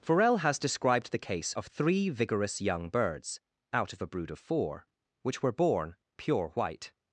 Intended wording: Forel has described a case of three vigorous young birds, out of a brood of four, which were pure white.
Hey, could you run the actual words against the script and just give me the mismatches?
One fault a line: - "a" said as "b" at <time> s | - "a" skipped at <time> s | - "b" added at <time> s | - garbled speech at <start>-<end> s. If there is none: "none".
- "a" said as "the" at 1.1 s
- "born" added at 5.5 s